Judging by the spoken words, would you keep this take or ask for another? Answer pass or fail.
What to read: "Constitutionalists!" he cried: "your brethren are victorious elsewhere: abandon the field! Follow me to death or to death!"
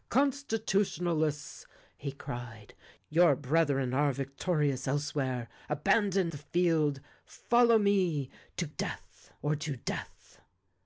pass